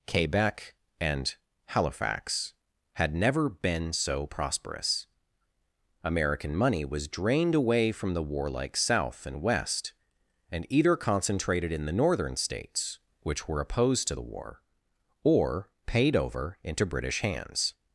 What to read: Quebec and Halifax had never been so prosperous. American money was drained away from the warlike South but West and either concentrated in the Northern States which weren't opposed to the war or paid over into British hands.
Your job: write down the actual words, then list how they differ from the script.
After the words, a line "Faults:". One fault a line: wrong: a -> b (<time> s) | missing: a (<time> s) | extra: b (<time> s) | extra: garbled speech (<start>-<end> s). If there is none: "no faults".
Quebec and Halifax had never been so prosperous. American money was drained away from the warlike South and West and either concentrated in the Northern States which were opposed to the war or paid over into British hands.
Faults:
wrong: but -> and (9.3 s)
wrong: weren't -> were (13.5 s)